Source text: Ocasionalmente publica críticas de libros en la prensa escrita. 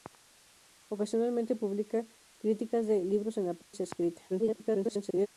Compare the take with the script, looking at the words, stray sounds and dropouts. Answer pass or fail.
fail